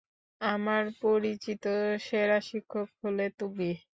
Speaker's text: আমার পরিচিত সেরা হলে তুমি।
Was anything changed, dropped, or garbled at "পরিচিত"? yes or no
no